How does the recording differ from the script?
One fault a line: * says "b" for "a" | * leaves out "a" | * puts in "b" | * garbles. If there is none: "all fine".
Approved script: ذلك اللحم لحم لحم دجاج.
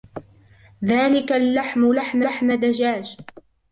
all fine